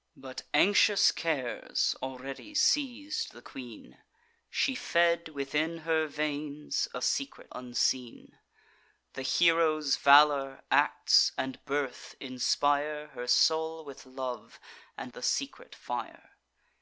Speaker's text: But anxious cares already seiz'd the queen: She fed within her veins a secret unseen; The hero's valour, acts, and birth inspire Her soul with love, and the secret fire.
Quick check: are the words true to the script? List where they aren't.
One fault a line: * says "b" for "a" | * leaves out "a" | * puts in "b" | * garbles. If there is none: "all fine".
all fine